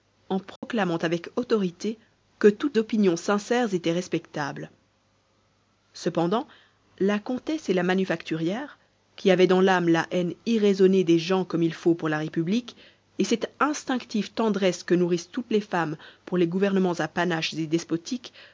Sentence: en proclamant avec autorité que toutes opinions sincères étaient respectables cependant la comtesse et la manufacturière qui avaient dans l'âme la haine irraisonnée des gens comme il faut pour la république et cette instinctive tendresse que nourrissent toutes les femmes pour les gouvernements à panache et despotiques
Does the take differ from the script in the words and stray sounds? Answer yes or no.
yes